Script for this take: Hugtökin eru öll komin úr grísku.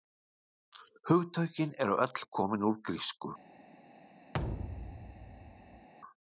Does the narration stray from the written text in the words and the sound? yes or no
yes